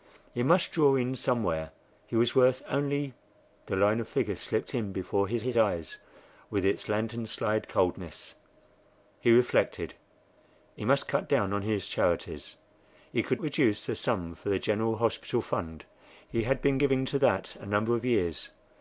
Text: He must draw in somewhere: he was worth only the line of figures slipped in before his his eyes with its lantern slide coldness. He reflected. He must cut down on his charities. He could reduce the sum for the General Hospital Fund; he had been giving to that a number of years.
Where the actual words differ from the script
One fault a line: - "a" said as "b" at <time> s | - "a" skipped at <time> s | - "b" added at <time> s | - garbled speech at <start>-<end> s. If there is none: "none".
none